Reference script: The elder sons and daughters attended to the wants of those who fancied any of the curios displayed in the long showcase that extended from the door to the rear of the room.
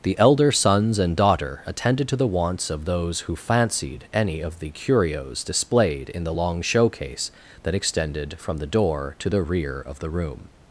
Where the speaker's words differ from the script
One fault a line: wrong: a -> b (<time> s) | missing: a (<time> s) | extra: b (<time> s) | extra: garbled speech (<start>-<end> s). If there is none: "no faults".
wrong: daughters -> daughter (1.1 s)